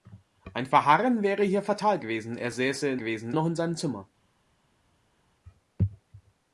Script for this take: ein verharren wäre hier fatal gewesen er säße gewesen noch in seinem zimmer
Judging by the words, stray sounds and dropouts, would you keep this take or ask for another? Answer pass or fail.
pass